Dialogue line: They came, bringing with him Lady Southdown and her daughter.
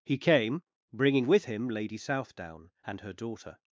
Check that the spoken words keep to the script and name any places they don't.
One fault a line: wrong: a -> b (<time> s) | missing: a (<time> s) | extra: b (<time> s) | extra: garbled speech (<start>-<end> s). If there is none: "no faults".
wrong: They -> He (0.0 s)